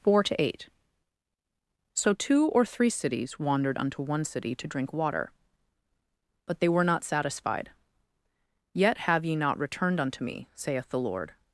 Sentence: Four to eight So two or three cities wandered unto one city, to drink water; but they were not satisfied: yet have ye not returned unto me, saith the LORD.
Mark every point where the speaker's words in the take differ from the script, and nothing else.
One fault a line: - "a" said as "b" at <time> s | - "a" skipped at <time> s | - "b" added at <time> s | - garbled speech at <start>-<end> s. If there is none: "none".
none